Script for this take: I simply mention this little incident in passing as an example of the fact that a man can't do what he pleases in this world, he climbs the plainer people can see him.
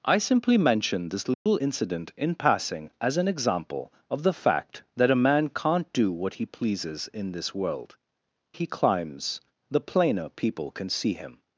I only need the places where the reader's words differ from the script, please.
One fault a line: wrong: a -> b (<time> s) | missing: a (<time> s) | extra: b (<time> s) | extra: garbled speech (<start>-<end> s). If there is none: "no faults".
no faults